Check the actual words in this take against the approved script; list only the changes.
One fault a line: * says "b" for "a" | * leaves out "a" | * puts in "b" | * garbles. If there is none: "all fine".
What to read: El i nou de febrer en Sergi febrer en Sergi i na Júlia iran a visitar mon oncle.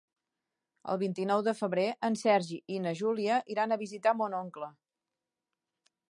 * puts in "vint"
* leaves out "febrer en Sergi"